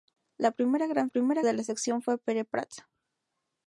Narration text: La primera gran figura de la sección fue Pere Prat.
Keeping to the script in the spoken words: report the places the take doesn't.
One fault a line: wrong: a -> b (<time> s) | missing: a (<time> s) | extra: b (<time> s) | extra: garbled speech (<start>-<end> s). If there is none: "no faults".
wrong: figura -> primera (1.1 s)